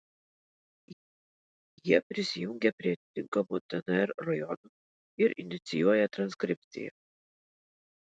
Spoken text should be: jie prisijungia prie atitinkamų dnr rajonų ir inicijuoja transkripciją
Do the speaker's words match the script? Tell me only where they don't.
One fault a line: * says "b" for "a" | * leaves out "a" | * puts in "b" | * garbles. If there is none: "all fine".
all fine